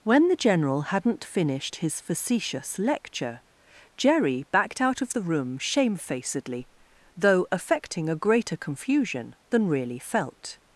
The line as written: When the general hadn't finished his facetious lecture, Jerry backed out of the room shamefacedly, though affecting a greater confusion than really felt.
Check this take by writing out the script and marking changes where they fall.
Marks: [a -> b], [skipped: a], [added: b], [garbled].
When the general hadn't finished his facetious lecture, Jerry backed out of the room shamefacedly, though affecting a greater confusion than really felt.